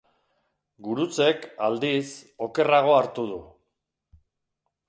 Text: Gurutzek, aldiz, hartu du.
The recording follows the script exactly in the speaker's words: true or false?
false